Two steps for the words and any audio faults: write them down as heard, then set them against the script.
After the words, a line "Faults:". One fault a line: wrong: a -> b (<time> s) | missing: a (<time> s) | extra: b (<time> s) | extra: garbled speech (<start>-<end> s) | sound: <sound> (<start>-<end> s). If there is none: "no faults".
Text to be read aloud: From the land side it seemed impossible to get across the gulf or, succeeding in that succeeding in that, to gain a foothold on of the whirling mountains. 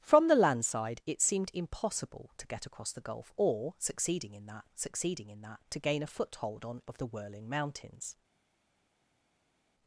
From the land side it seemed impossible to get across the gulf or, succeeding in that succeeding in that, to gain a foothold on of the whirling mountains.
Faults:
no faults